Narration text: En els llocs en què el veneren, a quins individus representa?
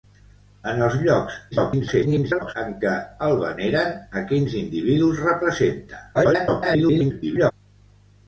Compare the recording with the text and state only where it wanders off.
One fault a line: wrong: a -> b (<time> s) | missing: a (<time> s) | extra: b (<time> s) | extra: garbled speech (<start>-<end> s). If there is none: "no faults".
extra: garbled speech (1.5-2.5 s)
extra: garbled speech (6.1-7.5 s)